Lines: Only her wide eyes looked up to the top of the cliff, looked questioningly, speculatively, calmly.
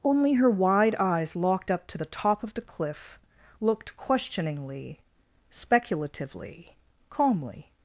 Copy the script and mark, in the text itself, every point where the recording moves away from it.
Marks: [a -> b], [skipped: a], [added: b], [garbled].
Only her wide eyes [looked -> locked] up to the top of the cliff, looked questioningly, speculatively, calmly.